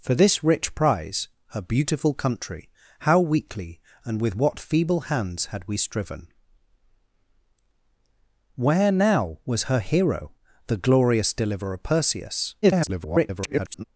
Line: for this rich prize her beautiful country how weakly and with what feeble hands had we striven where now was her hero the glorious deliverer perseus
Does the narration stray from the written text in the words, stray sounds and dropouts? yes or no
yes